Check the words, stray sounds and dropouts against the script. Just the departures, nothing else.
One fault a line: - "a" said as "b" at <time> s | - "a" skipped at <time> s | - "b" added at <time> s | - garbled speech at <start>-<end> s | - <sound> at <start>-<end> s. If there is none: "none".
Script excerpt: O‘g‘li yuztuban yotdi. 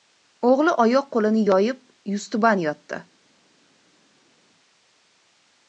- "oyoq qo‘lini yoyib" added at 0.8 s